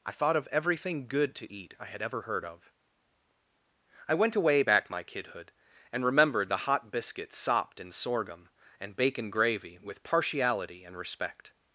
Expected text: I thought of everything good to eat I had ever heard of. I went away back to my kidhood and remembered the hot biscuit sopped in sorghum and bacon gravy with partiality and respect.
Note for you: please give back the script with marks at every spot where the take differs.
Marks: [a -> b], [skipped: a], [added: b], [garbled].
I thought of everything good to eat I had ever heard of. I went away back [skipped: to] my kidhood and remembered the hot biscuit sopped in sorghum and bacon gravy with partiality and respect.